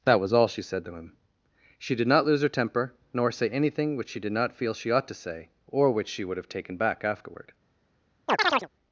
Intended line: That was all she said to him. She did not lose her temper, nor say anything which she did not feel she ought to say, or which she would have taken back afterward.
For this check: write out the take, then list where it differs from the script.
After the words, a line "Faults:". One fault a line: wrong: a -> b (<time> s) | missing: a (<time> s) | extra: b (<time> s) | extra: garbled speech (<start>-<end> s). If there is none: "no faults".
That was all she said to him. She did not lose her temper, nor say anything which she did not feel she ought to say, or which she would have taken back afterward.
Faults:
no faults